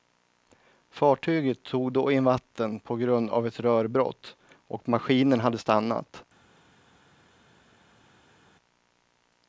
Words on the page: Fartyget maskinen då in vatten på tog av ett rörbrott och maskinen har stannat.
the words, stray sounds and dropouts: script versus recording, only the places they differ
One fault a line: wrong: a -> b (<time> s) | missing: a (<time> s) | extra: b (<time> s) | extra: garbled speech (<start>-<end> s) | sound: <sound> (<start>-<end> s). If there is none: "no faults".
wrong: maskinen -> tog (1.6 s)
wrong: tog -> grund (3.0 s)
wrong: har -> hade (5.4 s)